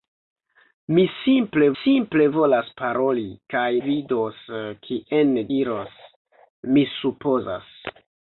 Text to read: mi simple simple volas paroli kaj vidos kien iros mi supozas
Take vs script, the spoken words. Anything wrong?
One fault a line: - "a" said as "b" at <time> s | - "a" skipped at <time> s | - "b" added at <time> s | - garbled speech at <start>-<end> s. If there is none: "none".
none